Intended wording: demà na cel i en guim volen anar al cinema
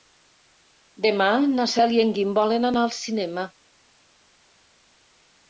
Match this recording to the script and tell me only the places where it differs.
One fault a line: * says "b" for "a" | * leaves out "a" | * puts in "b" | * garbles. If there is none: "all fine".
all fine